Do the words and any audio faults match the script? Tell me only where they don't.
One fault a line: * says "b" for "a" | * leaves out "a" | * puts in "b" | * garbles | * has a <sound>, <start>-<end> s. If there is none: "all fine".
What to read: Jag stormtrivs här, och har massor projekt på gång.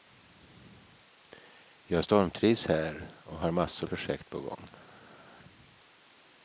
all fine